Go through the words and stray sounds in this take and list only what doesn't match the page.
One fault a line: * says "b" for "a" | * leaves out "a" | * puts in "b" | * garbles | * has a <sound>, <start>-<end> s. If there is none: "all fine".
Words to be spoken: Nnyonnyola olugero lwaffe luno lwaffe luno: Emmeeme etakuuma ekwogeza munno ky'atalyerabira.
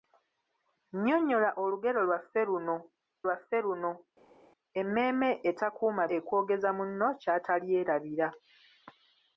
all fine